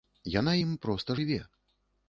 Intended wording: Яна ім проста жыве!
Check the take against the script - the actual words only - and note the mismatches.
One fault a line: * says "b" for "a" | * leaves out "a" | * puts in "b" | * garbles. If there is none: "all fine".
all fine